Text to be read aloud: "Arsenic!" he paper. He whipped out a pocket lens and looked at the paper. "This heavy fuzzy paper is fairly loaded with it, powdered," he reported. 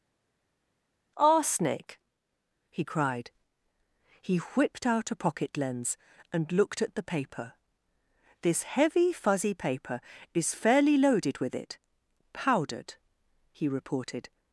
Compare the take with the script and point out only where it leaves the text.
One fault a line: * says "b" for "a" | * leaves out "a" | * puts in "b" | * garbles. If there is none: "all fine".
* says "cried" for "paper"